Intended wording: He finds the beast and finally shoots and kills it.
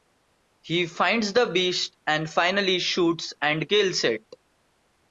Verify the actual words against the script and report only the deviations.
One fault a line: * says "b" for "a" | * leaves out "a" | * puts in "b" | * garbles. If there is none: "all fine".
all fine